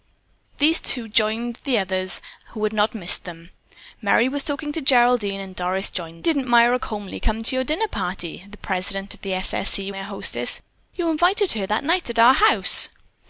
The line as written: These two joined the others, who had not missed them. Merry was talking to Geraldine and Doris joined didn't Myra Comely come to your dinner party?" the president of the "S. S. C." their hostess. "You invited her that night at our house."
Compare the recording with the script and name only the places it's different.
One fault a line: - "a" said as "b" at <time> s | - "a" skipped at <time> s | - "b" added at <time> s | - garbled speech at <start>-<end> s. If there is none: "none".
none